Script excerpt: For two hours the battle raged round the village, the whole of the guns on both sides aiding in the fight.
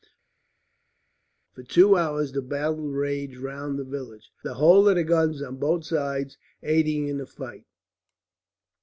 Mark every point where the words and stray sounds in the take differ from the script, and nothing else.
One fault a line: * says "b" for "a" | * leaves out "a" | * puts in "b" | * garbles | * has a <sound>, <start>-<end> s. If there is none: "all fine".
all fine